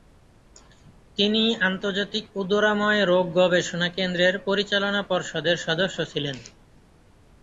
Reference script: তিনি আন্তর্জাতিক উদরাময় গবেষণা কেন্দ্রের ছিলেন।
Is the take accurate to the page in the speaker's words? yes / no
no